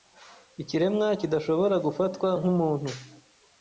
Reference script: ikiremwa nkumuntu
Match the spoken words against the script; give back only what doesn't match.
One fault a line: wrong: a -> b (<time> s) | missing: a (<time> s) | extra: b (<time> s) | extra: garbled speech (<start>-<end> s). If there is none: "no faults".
extra: kidashobora gufatwa (1.2 s)